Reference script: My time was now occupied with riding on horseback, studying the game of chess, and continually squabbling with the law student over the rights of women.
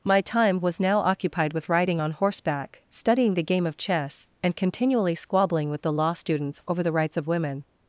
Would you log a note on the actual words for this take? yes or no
yes